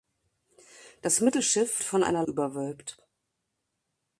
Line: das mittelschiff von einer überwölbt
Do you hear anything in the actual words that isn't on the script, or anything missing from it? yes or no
no